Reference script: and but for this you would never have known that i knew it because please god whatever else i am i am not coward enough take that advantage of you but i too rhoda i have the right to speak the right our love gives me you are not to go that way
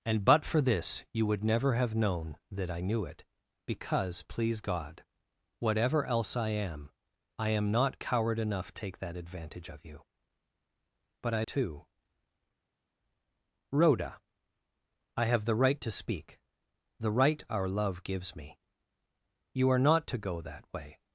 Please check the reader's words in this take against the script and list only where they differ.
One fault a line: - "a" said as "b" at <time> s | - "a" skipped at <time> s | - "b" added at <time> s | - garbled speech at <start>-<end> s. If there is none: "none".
none